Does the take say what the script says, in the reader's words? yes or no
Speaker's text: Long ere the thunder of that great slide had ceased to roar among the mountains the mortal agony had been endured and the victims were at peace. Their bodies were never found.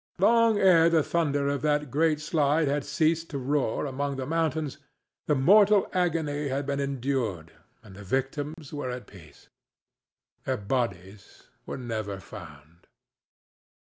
yes